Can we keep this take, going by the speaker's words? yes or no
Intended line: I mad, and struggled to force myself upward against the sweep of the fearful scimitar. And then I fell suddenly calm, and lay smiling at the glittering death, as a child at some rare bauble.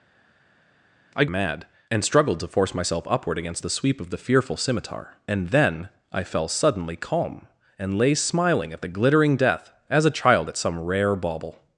yes